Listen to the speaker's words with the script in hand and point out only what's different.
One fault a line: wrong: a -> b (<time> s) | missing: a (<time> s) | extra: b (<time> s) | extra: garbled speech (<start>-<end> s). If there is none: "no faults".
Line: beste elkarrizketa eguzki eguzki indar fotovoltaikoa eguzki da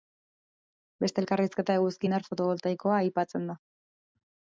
missing: eguzki (2.1 s)
wrong: eguzki -> aipatzen (3.0 s)